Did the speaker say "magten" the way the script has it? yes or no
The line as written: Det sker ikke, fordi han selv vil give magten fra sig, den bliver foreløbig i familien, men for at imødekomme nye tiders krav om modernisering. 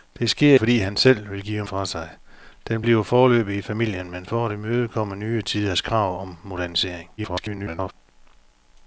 no